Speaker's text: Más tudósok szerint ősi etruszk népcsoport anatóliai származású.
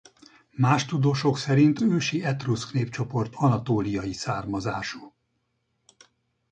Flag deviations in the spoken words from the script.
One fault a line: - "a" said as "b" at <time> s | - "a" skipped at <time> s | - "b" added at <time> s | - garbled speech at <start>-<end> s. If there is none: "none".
none